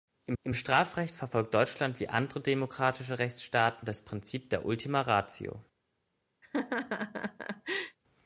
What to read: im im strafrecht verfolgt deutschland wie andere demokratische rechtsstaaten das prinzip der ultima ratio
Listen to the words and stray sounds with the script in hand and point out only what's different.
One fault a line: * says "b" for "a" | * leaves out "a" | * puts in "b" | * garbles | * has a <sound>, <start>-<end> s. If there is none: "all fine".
* has a laugh, 6.4-8.0 s